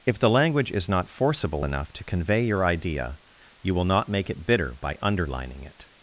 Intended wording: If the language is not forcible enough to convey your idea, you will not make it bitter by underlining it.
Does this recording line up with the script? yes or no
yes